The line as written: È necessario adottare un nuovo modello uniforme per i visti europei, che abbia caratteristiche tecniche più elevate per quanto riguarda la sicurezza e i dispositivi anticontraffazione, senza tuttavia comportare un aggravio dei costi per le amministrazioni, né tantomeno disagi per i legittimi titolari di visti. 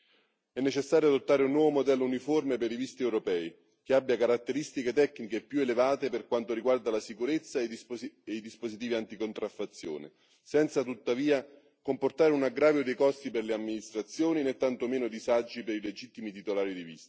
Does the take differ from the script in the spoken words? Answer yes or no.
no